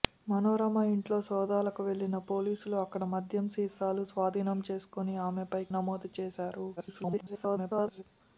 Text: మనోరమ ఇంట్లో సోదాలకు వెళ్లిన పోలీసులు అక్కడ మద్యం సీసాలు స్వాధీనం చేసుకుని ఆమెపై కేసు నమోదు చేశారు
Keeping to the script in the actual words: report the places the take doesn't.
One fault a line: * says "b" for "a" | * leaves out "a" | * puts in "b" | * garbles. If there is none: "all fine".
* leaves out "కేసు"
* garbles